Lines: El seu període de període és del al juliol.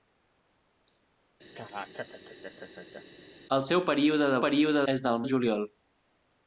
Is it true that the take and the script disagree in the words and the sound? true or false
true